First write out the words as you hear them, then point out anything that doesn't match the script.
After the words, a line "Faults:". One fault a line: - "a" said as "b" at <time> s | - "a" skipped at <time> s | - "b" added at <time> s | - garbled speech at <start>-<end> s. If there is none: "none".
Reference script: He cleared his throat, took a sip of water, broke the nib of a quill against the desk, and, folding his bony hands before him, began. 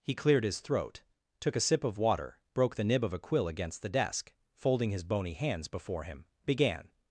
He cleared his throat, took a sip of water, broke the nib of a quill against the desk, folding his bony hands before him, began.
Faults:
- "and" skipped at 4.3 s